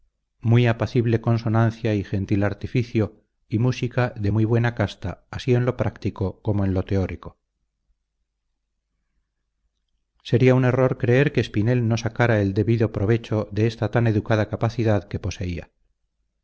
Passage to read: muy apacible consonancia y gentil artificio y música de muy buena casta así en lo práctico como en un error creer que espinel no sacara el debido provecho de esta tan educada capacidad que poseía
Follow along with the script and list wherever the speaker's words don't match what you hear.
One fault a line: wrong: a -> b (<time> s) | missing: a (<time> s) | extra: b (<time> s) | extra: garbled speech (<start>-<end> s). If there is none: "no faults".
extra: lo teórico sería (6.7 s)